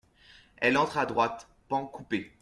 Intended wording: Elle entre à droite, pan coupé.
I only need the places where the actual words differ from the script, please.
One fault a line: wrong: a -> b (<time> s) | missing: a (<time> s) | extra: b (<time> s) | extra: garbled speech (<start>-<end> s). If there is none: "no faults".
no faults